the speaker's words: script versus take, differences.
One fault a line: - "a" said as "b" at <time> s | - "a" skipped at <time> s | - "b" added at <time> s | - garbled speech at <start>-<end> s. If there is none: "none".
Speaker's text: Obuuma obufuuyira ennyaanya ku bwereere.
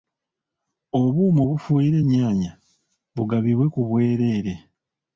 - "bugabibwe" added at 3.2 s